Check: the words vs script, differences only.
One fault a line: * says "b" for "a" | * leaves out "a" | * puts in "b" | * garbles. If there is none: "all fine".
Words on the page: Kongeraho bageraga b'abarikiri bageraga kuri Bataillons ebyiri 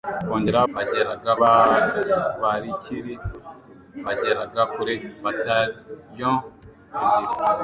all fine